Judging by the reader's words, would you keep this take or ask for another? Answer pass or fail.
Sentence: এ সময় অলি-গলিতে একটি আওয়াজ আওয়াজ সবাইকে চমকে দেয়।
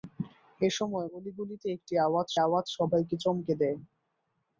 pass